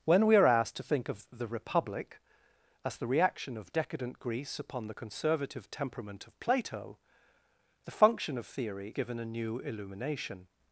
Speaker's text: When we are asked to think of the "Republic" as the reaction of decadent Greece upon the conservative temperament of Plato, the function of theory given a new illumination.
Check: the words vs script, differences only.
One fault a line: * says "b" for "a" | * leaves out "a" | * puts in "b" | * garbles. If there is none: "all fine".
all fine